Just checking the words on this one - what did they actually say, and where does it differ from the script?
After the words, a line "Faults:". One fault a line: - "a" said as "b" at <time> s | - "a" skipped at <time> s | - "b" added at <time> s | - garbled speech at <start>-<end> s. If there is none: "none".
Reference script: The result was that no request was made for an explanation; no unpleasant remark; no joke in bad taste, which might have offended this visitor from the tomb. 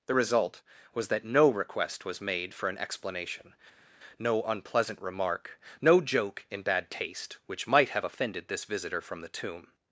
The result was that no request was made for an explanation; no unpleasant remark; no joke in bad taste, which might have offended this visitor from the tomb.
Faults:
none